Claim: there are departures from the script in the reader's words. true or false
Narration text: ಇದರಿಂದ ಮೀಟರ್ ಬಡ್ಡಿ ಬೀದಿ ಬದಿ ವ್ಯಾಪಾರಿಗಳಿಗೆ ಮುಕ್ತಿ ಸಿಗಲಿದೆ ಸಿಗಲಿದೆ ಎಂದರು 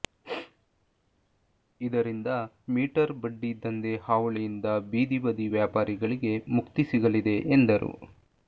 true